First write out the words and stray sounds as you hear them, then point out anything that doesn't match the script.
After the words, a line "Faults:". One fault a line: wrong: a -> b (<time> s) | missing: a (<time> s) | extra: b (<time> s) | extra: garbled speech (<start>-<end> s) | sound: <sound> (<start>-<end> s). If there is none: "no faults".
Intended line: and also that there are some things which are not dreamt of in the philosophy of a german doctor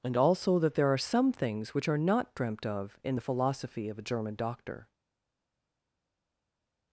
and also that there are some things which are not dreamt of in the philosophy of a german doctor
Faults:
no faults